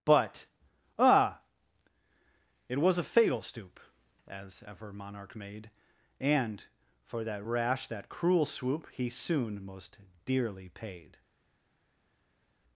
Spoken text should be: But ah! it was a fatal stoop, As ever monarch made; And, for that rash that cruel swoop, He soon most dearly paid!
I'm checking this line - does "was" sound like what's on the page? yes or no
yes